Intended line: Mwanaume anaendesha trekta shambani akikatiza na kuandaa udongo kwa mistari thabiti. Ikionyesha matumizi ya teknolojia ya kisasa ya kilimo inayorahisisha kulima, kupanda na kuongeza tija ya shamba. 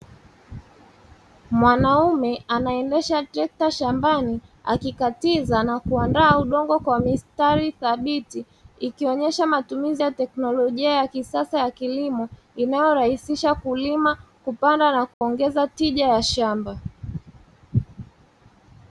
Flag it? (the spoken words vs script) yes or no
no